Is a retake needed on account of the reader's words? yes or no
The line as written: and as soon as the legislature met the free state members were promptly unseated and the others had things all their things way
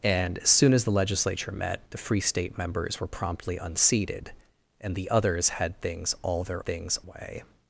no